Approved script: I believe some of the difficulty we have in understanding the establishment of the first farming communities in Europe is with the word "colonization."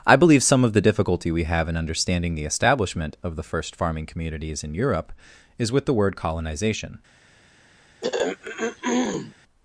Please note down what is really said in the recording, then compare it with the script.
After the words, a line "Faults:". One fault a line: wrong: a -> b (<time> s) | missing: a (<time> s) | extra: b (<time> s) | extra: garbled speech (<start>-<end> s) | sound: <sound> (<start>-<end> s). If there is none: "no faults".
I believe some of the difficulty we have in understanding the establishment of the first farming communities in Europe is with the word "colonization."
Faults:
sound: throat clearing (8.0-9.3 s)